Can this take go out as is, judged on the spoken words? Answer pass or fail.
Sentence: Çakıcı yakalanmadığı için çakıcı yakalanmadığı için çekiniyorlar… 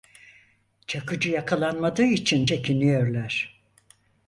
fail